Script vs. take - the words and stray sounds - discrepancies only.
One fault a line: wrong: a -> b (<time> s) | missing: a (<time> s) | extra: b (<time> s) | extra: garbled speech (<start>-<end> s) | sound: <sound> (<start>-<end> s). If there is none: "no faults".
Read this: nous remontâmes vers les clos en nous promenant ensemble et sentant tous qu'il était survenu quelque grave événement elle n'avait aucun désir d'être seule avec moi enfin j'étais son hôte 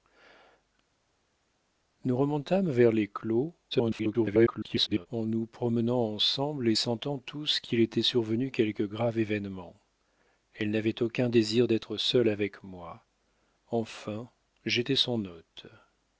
extra: garbled speech (3.7-5.1 s)